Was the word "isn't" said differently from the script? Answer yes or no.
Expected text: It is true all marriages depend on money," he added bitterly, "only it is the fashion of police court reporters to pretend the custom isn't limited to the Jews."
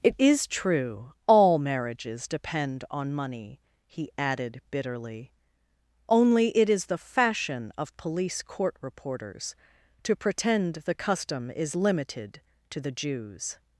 yes